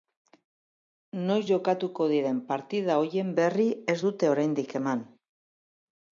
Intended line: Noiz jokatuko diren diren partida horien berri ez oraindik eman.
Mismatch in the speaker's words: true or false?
true